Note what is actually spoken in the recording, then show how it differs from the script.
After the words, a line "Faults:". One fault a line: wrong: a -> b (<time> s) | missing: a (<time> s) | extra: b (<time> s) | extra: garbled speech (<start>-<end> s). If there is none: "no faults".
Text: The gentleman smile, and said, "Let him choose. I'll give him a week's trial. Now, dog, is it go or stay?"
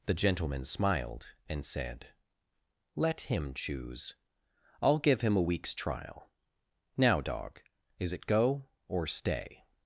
The gentleman smiled, and said, "Let him choose. I'll give him a week's trial. Now, dog, is it go or stay?"
Faults:
wrong: smile -> smiled (0.6 s)